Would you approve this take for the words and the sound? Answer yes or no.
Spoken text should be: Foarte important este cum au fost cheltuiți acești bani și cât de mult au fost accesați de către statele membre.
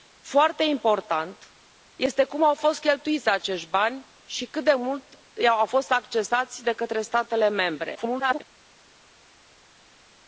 no